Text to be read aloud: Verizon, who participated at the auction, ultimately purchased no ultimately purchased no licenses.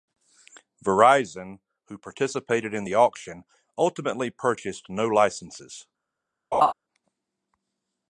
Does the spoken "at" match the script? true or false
false